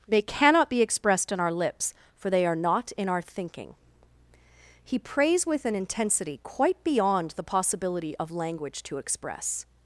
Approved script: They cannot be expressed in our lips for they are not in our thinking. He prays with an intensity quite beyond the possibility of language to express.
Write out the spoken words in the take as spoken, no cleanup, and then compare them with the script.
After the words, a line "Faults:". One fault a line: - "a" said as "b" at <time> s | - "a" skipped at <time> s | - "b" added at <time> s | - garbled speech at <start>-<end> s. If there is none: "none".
They cannot be expressed in our lips for they are not in our thinking. He prays with an intensity quite beyond the possibility of language to express.
Faults:
none